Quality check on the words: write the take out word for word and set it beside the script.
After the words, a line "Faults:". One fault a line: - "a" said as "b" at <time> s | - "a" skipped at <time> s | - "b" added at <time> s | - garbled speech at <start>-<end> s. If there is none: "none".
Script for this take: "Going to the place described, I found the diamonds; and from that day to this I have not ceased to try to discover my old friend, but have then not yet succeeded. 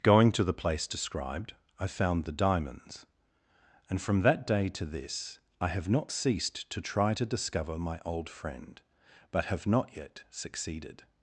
"Going to the place described, I found the diamonds; and from that day to this I have not ceased to try to discover my old friend, but have not yet succeeded.
Faults:
- "then" skipped at 9.7 s